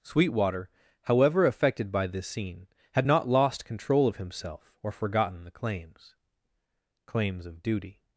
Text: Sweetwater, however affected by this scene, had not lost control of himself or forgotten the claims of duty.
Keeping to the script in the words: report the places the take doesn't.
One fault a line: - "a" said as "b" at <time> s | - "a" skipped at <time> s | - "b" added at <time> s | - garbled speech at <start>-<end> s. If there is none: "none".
- "claims" added at 7.1 s